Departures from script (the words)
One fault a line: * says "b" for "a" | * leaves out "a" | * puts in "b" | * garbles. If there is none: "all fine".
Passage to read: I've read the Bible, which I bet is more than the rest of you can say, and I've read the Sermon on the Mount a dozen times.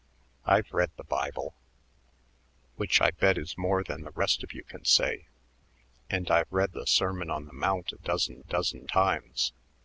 * puts in "dozen"